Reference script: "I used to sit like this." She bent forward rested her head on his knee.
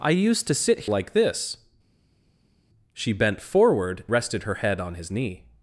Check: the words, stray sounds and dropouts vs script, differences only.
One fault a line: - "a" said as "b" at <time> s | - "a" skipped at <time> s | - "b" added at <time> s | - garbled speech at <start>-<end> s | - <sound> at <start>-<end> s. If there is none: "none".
none